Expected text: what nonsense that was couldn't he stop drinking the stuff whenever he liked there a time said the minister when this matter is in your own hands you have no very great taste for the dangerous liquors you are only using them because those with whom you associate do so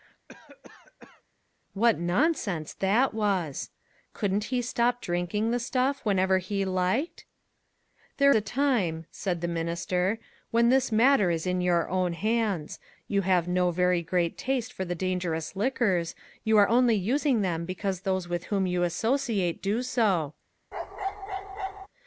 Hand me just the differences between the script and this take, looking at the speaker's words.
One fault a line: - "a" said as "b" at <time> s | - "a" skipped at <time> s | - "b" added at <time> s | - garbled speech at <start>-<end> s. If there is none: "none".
none